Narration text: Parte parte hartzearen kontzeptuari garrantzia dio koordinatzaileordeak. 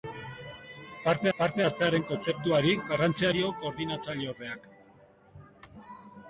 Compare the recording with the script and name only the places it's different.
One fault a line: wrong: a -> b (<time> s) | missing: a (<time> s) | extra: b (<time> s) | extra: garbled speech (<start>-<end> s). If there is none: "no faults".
no faults